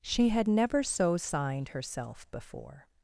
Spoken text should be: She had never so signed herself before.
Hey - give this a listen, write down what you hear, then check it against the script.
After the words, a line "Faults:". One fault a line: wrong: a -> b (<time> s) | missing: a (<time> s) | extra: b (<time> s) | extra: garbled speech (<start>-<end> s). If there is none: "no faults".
She had never so signed herself before.
Faults:
no faults